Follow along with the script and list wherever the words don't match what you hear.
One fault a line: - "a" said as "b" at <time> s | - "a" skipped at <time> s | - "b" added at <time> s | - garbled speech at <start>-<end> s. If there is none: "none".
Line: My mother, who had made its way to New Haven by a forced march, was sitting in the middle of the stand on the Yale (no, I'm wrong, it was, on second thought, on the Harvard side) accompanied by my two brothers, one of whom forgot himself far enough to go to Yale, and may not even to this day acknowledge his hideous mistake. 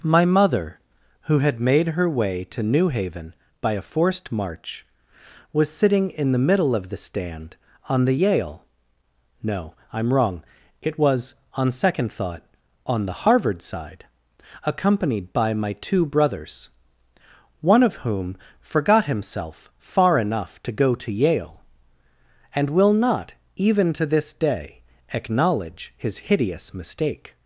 - "its" said as "her" at 1.9 s
- "may" said as "will" at 22.7 s